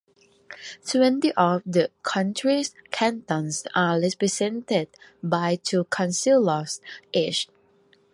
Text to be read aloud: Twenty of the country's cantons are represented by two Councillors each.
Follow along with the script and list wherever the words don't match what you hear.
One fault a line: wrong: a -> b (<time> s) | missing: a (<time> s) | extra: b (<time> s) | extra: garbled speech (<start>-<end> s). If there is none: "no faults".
no faults